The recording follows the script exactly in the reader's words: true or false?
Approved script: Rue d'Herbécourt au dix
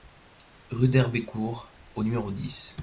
false